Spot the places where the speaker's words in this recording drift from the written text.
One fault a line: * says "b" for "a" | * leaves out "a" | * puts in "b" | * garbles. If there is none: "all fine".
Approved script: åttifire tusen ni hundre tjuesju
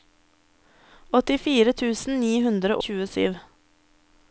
all fine